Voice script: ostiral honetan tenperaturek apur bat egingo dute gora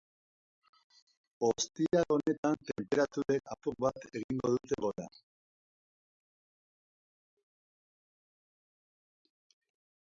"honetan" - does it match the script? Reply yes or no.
yes